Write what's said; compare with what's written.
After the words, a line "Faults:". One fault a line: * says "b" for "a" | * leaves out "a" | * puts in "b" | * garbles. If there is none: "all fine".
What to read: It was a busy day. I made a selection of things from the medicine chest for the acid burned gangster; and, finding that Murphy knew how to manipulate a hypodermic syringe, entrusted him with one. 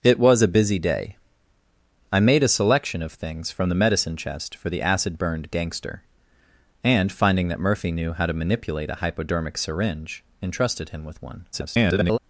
It was a busy day. I made a selection of things from the medicine chest for the acid burned gangster; and, finding that Murphy knew how to manipulate a hypodermic syringe, entrusted him with one. [garbled]
Faults:
* garbles